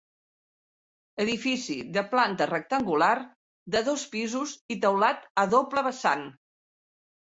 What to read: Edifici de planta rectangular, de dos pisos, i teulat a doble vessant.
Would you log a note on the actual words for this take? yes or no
no